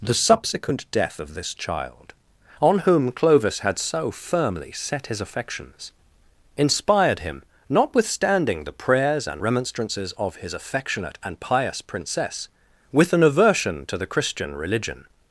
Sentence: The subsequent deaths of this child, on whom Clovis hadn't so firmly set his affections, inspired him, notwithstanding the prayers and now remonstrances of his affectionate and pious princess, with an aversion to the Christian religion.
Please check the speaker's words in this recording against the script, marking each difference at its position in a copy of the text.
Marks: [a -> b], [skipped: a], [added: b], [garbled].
The subsequent [deaths -> death] of this child, on whom Clovis [hadn't -> had] so firmly set his affections, inspired him, notwithstanding the prayers and [skipped: now] remonstrances of his affectionate and pious princess, with an aversion to the Christian religion.